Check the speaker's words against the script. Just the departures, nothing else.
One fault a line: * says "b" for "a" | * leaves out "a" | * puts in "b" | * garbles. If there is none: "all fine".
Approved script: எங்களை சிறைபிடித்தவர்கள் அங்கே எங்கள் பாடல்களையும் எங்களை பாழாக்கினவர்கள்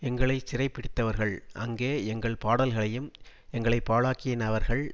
all fine